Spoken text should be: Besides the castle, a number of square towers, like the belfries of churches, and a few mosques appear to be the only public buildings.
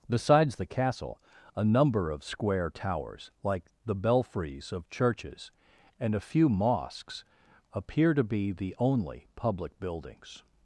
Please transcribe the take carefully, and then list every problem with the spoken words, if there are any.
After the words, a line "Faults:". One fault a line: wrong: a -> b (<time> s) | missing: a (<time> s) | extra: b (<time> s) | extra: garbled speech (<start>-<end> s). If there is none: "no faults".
Besides the castle, a number of square towers, like the belfries of churches, and a few mosques appear to be the only public buildings.
Faults:
no faults